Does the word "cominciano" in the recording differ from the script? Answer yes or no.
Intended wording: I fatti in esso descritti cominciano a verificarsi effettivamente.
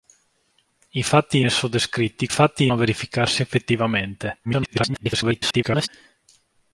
yes